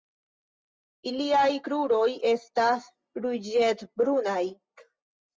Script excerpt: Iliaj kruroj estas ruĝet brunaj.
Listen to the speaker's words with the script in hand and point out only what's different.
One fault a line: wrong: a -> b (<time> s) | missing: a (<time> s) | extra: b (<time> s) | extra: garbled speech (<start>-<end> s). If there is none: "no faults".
no faults